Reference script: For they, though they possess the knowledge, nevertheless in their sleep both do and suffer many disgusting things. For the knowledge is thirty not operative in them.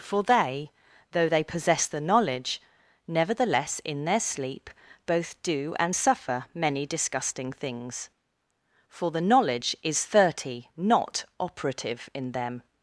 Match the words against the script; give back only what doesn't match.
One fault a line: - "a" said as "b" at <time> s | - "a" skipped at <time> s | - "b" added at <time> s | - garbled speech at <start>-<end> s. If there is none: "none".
none